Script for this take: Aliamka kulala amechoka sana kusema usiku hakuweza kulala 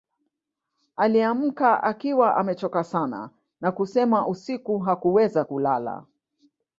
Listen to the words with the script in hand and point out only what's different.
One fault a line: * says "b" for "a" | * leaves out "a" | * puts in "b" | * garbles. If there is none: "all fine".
* says "akiwa" for "kulala"
* puts in "na"